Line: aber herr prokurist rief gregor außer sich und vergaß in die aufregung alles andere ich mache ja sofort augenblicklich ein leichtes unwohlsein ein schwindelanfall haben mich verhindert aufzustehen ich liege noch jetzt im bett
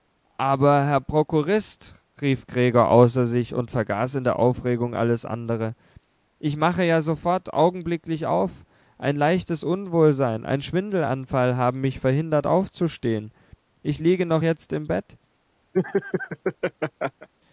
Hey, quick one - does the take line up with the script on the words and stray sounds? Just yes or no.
no